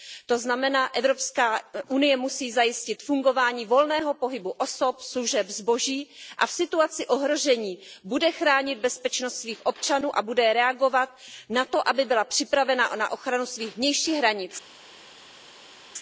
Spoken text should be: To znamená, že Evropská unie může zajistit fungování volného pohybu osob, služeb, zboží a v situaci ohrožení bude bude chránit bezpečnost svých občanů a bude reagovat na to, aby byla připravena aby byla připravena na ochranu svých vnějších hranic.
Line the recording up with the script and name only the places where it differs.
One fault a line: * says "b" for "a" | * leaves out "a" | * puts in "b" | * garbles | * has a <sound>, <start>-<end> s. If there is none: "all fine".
* says "musí" for "může"
* leaves out "bude"
* leaves out "aby byla připravena"